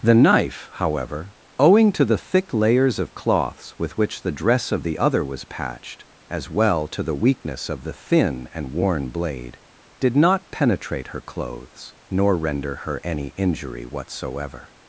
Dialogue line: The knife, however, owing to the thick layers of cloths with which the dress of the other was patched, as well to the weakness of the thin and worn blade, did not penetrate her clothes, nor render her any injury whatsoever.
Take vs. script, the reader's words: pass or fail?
pass